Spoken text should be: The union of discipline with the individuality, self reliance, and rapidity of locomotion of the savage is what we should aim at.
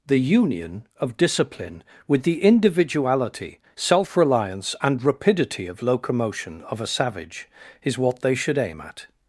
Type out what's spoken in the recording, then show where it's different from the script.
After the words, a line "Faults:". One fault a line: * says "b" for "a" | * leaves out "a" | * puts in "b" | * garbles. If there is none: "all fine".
The union of discipline with the individuality, self reliance, and rapidity of locomotion of a savage is what they should aim at.
Faults:
* says "a" for "the"
* says "they" for "we"